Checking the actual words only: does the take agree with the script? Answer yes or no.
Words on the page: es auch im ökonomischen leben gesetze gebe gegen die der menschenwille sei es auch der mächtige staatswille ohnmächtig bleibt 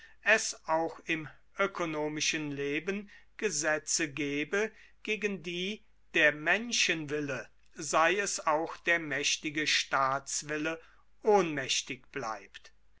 yes